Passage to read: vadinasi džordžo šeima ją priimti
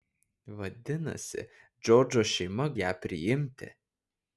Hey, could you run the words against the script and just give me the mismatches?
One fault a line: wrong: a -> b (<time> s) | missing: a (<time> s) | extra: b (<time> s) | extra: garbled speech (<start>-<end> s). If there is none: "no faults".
no faults